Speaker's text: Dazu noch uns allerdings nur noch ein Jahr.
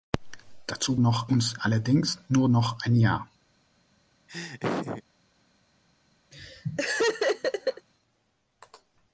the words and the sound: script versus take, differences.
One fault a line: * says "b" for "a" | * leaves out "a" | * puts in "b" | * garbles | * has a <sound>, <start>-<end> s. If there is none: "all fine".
* has a laugh, 4.3-5.0 s
* has a laugh, 6.3-7.9 s